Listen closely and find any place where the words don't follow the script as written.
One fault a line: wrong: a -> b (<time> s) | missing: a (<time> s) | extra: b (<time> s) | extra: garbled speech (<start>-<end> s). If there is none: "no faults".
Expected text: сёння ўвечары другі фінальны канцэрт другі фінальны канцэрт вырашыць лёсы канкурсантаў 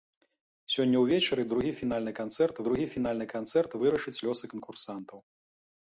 no faults